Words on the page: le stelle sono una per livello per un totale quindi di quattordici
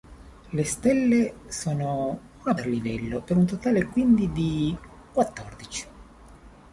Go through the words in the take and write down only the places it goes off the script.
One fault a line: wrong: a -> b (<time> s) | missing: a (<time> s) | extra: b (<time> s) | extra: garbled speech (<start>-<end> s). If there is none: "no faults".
no faults